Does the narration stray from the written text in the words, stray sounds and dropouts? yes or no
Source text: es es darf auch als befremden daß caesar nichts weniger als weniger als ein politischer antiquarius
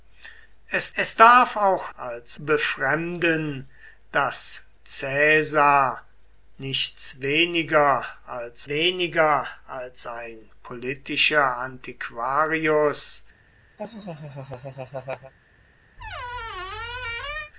yes